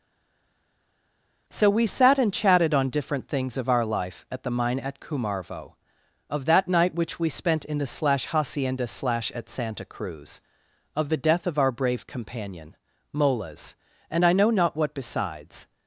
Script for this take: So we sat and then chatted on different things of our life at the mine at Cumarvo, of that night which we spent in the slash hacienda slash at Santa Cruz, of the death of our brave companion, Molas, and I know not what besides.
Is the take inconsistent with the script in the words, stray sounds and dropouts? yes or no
yes